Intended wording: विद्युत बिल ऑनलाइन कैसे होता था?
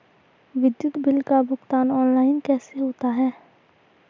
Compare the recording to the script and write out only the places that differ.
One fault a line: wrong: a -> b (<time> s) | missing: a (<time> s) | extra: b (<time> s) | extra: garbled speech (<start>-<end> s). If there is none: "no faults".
extra: का भुगतान (1.2 s)
wrong: था -> है (3.1 s)